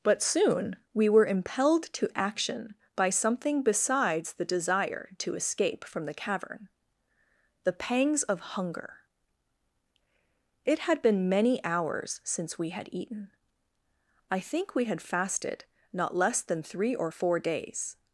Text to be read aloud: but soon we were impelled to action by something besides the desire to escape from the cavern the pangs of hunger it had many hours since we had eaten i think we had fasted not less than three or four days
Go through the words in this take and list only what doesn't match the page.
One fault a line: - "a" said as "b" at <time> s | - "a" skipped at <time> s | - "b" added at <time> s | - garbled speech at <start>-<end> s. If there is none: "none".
- "been" added at 11.0 s